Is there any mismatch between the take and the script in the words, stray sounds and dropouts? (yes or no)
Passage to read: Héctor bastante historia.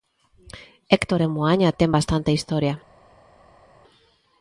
yes